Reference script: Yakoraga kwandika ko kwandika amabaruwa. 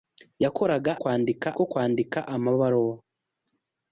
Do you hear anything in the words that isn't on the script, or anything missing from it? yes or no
no